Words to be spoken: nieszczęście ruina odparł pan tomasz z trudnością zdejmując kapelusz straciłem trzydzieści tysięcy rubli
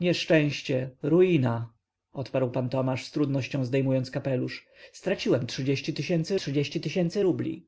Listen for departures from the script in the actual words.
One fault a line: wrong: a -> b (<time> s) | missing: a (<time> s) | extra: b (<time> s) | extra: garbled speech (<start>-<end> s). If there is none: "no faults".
extra: trzydzieści tysięcy (6.4 s)